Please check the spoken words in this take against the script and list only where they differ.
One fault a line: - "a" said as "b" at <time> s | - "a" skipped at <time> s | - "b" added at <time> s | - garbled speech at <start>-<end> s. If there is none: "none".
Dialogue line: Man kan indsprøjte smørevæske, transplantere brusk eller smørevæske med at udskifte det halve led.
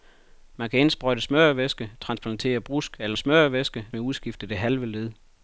none